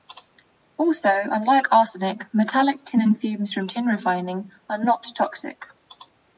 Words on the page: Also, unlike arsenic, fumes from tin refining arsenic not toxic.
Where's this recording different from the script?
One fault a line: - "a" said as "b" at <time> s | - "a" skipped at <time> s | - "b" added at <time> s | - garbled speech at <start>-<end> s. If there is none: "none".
- "metallic tin and" added at 2.3 s
- "arsenic" said as "are" at 4.7 s